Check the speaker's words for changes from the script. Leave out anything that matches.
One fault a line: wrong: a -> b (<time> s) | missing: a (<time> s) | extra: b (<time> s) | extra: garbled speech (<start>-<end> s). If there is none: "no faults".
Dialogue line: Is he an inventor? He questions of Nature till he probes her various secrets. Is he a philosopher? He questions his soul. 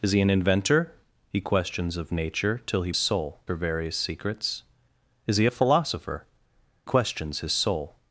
wrong: probes -> soul (3.0 s)
missing: He (6.3 s)